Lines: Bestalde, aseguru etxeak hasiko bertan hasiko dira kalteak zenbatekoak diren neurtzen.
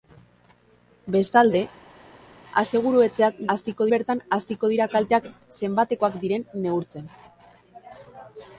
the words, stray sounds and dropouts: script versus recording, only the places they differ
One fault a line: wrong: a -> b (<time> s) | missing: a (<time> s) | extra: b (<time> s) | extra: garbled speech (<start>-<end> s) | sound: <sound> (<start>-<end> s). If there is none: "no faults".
no faults